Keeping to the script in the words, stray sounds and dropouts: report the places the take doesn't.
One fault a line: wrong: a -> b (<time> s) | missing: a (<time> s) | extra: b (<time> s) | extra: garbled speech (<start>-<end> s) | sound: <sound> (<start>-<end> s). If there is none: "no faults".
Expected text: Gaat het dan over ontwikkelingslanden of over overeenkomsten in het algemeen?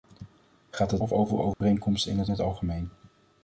missing: dan over ontwikkelingslanden (1.0 s)
sound: dropout (1.5-1.6 s)
extra: het (2.3 s)